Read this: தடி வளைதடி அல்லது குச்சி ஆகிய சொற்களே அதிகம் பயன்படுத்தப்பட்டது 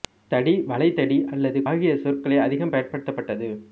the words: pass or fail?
fail